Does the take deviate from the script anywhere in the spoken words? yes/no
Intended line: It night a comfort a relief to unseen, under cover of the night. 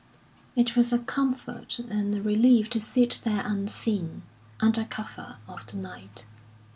yes